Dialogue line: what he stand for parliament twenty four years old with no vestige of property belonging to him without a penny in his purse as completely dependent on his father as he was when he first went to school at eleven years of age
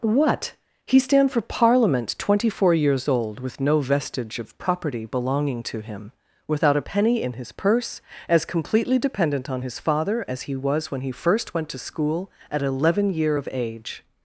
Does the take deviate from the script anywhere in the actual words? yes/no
yes